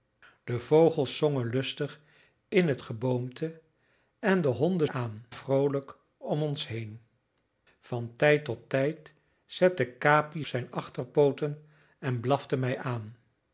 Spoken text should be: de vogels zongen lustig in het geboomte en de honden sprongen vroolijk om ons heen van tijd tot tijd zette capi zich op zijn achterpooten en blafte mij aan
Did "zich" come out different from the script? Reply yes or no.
yes